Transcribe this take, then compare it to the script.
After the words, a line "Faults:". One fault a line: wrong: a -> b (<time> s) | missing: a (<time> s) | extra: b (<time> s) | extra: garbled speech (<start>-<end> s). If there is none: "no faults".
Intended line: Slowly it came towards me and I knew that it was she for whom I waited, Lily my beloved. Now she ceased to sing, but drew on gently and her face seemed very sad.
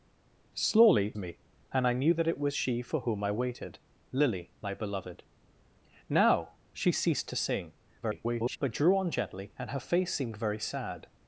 Slowly me and I knew that it was she for whom I waited, Lily my beloved. Now she ceased to sing, [garbled] but drew on gently and her face seemed very sad.
Faults:
missing: it came towards (1.2 s)
extra: garbled speech (8.0-8.6 s)